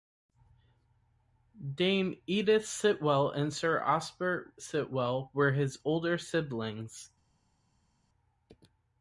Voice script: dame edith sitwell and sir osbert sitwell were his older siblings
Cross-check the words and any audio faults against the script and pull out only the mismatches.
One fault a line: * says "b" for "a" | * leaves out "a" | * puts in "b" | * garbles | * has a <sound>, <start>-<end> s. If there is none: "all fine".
all fine